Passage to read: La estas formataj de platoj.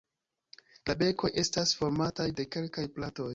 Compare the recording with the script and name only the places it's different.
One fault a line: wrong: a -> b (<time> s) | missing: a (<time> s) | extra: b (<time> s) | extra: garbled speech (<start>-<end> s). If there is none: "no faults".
extra: bekoj (1.0 s)
extra: kelkaj (2.6 s)